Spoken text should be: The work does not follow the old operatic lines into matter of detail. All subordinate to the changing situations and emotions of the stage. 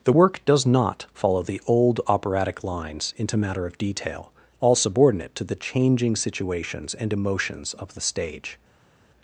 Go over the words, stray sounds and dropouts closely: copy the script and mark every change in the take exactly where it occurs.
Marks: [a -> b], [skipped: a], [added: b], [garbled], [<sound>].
The work does not follow the old operatic lines into matter of detail. All subordinate to the changing situations and emotions of the stage.